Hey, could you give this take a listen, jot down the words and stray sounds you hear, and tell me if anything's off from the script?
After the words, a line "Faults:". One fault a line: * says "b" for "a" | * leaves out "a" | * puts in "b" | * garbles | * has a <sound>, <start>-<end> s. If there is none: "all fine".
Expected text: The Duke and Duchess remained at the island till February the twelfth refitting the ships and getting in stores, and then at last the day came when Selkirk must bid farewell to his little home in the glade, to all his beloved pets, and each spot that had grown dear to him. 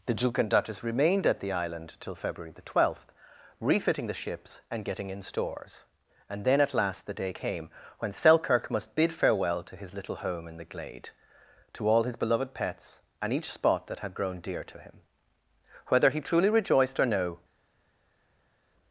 The Duke and Duchess remained at the island till February the twelfth refitting the ships and getting in stores, and then at last the day came when Selkirk must bid farewell to his little home in the glade, to all his beloved pets, and each spot that had grown dear to him. Whether he truly rejoiced or no
Faults:
* puts in "Whether he truly rejoiced or no"